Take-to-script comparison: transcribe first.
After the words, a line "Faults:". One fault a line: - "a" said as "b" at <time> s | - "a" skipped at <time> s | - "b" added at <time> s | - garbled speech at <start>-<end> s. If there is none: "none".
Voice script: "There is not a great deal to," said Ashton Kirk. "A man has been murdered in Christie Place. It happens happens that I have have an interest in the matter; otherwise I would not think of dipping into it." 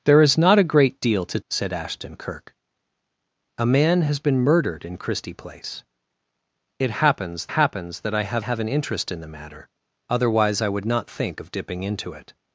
"There is not a great deal to," said Ashton Kirk. "A man has been murdered in Christie Place. It happens happens that I have have an interest in the matter; otherwise I would not think of dipping into it."
Faults:
none